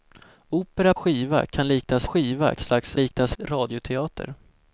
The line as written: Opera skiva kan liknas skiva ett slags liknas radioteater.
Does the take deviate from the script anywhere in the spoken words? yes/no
no